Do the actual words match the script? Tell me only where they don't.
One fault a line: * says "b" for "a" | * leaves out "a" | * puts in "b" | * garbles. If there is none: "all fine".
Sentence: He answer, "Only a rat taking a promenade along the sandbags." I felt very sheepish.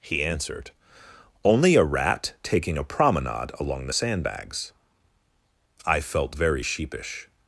* says "answered" for "answer"